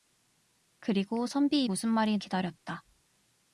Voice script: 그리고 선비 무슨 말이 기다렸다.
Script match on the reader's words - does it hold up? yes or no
yes